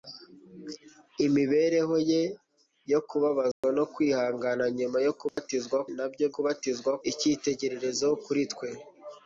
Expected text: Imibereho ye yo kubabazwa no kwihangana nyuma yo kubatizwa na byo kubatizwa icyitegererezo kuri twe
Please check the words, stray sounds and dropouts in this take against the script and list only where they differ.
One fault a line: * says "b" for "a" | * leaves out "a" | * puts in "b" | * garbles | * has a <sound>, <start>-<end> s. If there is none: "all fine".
* has a dropout, 3.5-3.6 s
* has a dropout, 5.3-5.4 s